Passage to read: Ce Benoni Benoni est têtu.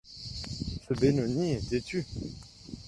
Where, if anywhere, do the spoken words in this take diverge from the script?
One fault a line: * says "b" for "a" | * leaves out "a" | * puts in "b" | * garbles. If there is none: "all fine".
* leaves out "Benoni"